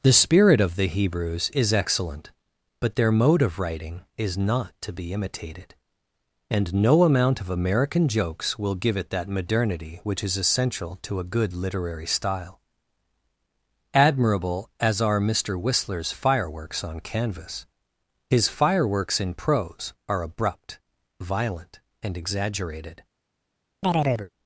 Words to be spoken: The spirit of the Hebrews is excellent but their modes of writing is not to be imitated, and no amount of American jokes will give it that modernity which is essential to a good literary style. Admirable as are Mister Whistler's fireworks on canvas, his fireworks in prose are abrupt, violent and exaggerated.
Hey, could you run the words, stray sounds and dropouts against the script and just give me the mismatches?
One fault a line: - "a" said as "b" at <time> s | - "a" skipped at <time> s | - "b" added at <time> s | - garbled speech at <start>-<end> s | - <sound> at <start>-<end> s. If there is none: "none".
- "modes" said as "mode" at 3.1 s
- chirp at 23.8-24.3 s